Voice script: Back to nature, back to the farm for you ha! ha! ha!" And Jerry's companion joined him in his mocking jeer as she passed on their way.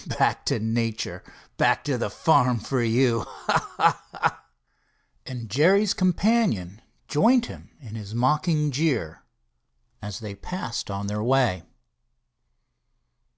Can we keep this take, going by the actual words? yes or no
no